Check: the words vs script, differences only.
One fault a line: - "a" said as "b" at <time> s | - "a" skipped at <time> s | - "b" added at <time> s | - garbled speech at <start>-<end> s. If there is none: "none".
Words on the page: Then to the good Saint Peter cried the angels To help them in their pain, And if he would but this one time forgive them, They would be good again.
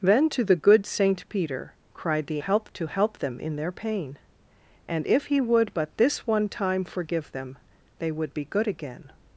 - "angels" said as "help" at 2.4 s